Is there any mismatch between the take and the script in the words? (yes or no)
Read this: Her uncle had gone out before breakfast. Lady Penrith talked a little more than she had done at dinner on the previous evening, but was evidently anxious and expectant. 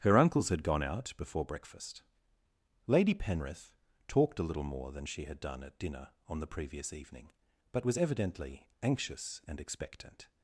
yes